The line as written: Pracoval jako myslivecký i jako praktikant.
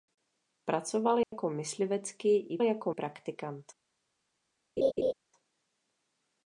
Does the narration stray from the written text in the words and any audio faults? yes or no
yes